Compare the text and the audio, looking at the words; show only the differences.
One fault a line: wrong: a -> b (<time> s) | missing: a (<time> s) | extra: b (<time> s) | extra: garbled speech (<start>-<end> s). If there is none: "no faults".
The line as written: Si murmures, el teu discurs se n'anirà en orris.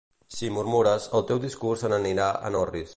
no faults